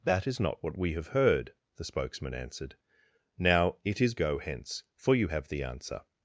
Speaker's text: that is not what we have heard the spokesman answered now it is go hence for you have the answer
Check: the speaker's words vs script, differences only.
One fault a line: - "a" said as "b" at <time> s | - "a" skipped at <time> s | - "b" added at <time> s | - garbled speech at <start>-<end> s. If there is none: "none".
none